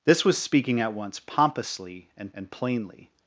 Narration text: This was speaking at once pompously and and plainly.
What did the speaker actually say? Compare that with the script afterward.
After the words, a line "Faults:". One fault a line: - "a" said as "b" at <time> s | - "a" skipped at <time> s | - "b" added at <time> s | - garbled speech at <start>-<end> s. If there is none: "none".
This was speaking at once pompously and and plainly.
Faults:
none